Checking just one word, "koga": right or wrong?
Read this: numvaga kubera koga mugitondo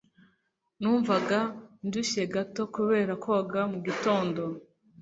right